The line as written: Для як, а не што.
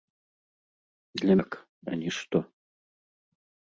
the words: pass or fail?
pass